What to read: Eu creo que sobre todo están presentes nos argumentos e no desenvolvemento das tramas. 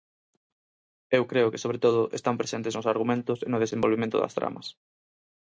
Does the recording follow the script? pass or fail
pass